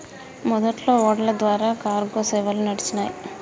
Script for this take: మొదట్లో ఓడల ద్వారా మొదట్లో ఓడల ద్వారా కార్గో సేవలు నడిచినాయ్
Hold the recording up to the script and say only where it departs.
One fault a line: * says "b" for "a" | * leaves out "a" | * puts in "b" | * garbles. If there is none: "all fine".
* leaves out "మొదట్లో ఓడల ద్వారా"